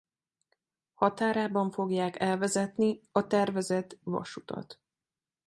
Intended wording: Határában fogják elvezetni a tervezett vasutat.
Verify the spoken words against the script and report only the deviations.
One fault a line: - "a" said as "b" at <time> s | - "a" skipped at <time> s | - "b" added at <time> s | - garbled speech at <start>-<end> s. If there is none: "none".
none